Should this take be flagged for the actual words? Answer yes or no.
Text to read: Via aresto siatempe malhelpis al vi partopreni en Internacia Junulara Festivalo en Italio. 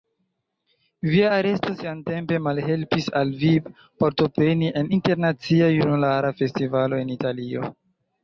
no